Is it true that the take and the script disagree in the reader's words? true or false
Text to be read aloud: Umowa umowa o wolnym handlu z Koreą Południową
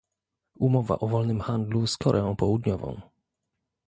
true